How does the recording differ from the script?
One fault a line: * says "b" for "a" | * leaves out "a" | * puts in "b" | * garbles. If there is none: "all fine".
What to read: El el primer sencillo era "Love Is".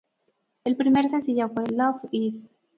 * leaves out "el"
* says "fue" for "era"